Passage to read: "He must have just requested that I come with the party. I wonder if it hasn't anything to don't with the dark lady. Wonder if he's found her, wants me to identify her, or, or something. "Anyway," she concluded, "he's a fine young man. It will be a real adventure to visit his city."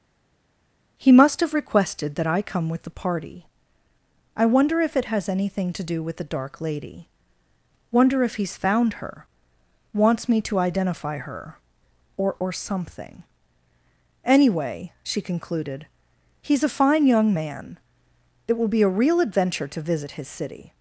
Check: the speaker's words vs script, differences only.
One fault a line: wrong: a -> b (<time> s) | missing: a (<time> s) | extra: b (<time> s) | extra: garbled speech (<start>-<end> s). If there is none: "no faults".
missing: just (1.5 s)
wrong: hasn't -> has (5.0 s)
wrong: don't -> do (5.8 s)